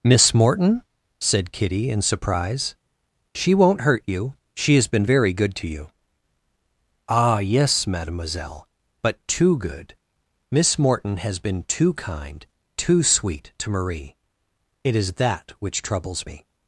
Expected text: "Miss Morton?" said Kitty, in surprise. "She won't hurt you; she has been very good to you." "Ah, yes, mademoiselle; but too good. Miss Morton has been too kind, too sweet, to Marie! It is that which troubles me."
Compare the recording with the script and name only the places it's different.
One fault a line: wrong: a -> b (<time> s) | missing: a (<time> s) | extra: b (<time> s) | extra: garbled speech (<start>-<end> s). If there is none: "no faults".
no faults